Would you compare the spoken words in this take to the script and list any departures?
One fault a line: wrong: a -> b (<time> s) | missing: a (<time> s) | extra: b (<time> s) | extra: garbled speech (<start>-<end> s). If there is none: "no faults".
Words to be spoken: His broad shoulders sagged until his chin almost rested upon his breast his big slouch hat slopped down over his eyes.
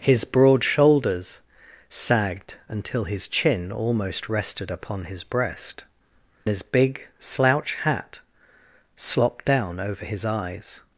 no faults